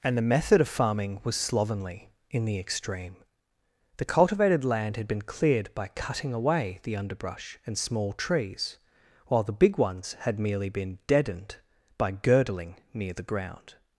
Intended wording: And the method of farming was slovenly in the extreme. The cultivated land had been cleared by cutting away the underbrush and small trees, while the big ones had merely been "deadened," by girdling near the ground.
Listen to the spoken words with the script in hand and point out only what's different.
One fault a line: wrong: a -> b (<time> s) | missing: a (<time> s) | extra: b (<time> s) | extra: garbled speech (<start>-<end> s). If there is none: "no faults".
no faults